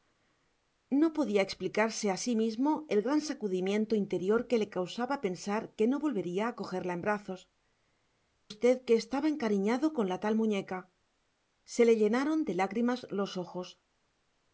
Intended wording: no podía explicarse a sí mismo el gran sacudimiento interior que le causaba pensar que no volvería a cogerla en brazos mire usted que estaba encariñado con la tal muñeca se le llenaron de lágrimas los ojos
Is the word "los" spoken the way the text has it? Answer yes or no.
yes